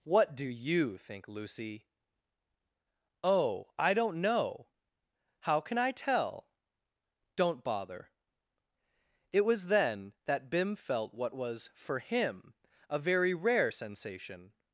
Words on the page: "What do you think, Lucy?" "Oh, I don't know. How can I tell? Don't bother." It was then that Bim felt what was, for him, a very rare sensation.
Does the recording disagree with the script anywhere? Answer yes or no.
no